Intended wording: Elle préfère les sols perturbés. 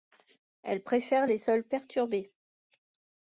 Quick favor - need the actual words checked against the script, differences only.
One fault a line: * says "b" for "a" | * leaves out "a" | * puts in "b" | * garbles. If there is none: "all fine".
all fine